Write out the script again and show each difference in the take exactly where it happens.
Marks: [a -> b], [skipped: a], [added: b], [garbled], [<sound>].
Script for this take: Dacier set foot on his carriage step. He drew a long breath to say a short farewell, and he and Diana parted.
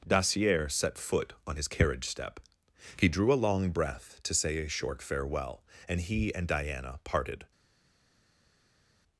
Dacier set foot on his carriage step. He drew a long breath to say a short farewell, and he and Diana parted.